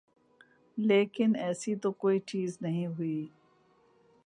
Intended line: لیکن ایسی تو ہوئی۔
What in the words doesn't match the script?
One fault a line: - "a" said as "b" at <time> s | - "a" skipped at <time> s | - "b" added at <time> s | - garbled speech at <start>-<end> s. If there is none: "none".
- "کوئی چیز نہیں" added at 1.9 s